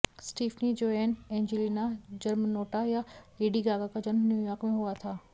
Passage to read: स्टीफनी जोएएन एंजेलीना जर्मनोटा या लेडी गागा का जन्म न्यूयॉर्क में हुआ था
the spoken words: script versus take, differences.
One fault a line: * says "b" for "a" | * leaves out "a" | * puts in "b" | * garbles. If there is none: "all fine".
all fine